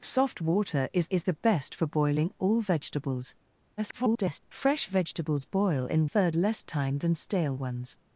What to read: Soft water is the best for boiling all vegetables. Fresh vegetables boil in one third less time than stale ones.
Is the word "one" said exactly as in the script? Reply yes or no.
no